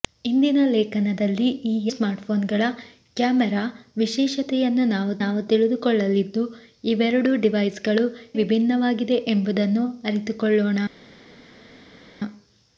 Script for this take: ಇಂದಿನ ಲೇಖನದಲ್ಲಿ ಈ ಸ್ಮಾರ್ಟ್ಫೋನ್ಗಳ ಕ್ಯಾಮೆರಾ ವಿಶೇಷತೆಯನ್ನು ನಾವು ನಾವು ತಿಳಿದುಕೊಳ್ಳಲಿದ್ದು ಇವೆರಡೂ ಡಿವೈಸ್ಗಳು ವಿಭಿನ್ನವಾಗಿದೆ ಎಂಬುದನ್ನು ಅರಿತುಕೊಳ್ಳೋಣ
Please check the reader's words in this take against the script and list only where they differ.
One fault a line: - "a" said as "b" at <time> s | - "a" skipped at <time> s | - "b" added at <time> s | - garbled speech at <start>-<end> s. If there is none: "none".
none